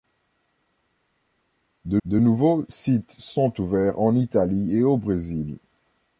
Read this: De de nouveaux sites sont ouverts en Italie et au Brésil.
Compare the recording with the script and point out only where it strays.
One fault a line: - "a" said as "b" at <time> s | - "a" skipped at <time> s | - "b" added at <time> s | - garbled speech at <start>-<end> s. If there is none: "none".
none